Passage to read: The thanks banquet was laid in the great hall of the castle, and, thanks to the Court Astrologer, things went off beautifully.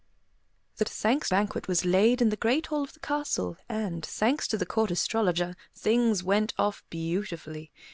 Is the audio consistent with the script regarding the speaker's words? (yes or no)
yes